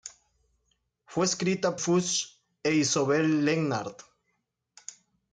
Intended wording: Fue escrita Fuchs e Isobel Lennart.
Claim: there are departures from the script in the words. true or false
false